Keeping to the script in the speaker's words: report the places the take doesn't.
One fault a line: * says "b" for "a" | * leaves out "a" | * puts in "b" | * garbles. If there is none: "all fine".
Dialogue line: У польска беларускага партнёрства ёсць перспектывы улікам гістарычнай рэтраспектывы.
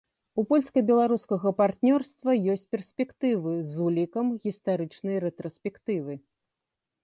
* puts in "з"